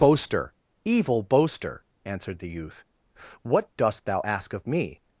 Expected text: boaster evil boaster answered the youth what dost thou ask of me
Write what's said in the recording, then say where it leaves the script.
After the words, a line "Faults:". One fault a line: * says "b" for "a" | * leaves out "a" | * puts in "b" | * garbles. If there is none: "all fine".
boaster evil boaster answered the youth what dost thou ask of me
Faults:
all fine